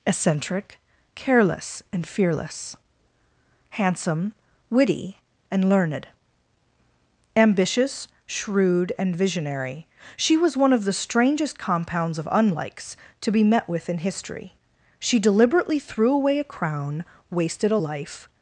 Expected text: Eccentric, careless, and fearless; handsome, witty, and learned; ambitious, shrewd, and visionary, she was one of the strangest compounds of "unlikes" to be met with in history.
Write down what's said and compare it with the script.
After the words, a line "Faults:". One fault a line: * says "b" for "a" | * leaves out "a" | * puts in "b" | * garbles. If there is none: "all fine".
Eccentric, careless, and fearless; handsome, witty, and learned; ambitious, shrewd, and visionary, she was one of the strangest compounds of "unlikes" to be met with in history. She deliberately threw away a crown, wasted a life
Faults:
* puts in "She deliberately threw away a crown wasted a life"